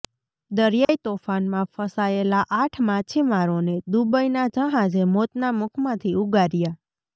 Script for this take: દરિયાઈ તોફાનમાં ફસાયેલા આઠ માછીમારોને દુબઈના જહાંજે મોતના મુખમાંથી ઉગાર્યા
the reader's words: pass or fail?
pass